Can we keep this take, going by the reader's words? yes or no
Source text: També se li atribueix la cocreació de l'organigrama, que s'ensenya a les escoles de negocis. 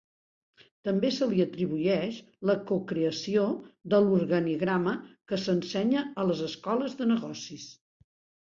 yes